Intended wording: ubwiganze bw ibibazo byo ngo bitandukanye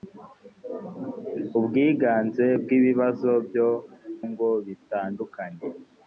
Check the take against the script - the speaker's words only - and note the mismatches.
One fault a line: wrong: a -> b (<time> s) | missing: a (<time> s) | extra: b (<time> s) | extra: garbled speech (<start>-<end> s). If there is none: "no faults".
no faults